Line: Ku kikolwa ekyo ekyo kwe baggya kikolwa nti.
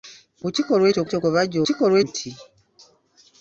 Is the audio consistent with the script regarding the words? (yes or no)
yes